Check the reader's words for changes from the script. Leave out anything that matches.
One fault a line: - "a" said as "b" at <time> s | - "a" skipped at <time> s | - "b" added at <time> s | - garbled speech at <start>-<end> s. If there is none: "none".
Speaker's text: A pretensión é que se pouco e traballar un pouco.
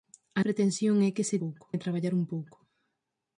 none